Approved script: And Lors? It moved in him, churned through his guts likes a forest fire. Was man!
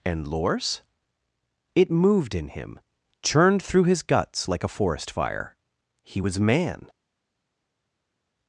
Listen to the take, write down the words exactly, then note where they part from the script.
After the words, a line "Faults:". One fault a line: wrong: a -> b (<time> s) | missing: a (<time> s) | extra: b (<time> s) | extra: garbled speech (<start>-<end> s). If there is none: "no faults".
And Lors? It moved in him, churned through his guts like a forest fire. He was man!
Faults:
wrong: likes -> like (4.5 s)
extra: He (6.0 s)